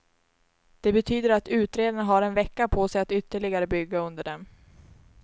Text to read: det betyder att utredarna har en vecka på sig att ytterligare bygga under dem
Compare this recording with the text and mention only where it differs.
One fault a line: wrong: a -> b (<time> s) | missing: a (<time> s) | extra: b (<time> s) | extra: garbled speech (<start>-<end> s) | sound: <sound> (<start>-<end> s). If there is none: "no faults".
no faults